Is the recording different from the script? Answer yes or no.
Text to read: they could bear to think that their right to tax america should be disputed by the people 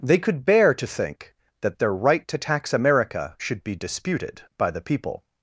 no